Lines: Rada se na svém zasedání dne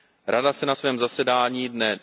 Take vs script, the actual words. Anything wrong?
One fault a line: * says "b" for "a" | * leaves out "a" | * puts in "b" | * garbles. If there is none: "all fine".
all fine